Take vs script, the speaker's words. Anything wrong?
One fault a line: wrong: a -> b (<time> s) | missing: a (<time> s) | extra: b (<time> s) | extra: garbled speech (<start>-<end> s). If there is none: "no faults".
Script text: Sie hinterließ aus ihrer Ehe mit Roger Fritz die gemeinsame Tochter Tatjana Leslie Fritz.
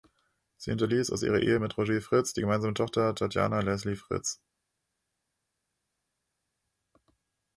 no faults